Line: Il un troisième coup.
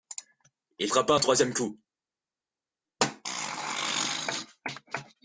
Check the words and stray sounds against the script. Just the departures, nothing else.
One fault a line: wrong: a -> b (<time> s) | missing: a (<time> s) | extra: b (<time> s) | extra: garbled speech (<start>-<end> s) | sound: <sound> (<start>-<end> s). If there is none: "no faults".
extra: frappa (0.8 s)